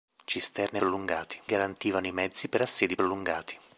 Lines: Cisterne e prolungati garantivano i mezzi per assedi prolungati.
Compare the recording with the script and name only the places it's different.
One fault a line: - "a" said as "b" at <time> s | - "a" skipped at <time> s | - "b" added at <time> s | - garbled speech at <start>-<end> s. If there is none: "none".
none